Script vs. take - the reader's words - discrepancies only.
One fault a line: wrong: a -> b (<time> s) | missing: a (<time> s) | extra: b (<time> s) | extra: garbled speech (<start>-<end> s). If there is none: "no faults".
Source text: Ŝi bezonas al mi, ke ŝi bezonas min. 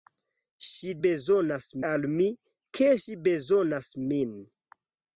no faults